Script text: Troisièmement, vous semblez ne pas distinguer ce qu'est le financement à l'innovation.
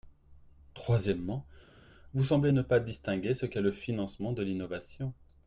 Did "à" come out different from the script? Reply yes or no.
yes